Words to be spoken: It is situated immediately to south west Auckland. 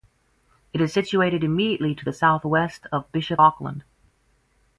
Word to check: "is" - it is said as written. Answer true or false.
true